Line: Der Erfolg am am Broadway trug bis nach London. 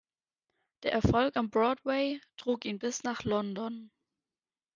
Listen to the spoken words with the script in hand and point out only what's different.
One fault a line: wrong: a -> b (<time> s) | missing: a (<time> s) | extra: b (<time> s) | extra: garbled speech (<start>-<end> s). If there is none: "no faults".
missing: am (1.5 s)
extra: ihn (2.7 s)